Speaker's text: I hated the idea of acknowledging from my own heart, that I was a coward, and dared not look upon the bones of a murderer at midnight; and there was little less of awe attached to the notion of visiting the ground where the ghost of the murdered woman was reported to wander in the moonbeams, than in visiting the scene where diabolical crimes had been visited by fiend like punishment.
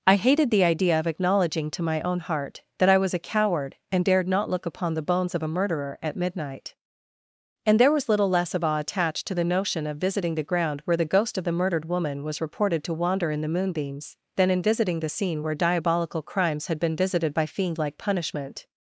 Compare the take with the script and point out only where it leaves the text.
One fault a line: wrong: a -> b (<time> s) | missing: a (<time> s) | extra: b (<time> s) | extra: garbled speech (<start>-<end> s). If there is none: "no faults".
wrong: from -> to (1.7 s)